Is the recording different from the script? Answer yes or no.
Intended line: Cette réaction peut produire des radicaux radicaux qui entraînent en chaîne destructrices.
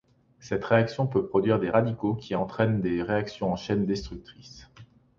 yes